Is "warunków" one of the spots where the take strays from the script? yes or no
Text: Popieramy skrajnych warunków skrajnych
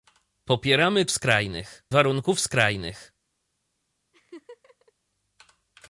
no